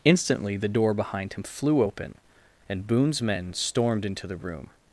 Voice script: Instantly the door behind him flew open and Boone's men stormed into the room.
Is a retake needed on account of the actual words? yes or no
no